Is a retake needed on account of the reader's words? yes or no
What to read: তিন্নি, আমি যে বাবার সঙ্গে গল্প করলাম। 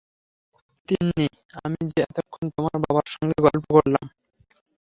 yes